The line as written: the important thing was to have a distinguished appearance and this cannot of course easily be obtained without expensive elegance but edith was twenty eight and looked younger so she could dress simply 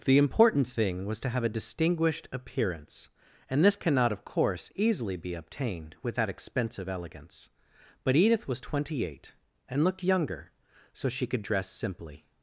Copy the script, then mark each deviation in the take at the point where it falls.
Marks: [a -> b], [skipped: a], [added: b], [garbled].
the important thing was to have a distinguished appearance and this cannot of course easily be obtained without expensive elegance but edith was twenty eight and looked younger so she could dress simply